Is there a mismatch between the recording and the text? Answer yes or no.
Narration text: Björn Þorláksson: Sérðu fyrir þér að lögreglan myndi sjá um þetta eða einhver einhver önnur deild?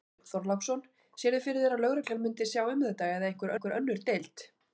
no